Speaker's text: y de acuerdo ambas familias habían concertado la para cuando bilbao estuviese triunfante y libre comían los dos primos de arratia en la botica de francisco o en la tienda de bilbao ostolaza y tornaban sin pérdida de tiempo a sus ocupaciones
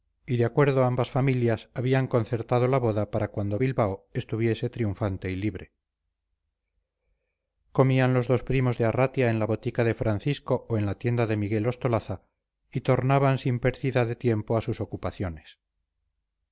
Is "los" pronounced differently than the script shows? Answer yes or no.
no